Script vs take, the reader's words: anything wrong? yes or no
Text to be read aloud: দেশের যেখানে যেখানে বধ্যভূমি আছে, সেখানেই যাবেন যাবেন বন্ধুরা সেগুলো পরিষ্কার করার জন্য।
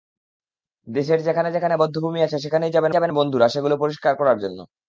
no